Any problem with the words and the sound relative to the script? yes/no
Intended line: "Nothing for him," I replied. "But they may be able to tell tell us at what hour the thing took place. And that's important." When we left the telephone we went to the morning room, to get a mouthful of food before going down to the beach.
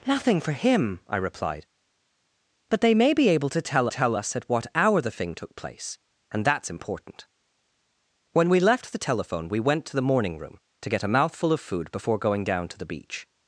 no